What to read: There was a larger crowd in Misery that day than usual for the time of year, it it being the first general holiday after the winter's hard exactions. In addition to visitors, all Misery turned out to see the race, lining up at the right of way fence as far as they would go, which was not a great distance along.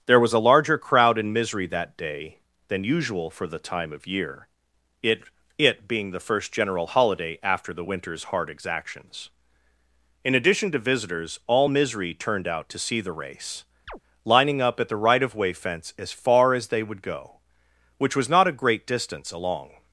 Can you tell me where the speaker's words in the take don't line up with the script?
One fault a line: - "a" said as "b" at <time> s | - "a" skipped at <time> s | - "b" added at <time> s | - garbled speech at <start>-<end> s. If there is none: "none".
none